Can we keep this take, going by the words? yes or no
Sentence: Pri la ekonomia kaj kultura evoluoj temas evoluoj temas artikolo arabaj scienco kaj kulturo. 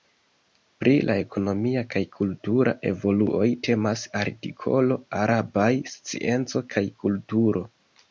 no